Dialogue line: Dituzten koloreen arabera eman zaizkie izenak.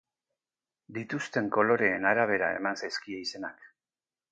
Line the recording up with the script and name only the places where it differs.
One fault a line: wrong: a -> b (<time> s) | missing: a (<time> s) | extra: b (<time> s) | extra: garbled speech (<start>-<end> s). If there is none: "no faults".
no faults